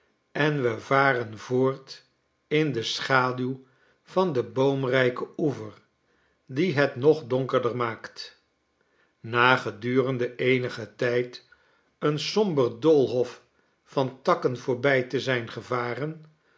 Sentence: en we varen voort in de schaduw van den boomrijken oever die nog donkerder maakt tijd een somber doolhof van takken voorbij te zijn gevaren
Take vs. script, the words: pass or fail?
fail